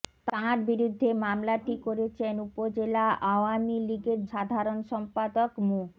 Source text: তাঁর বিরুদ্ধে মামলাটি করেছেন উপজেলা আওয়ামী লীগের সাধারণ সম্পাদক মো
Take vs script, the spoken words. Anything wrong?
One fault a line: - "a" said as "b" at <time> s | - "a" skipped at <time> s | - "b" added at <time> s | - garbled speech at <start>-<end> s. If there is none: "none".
none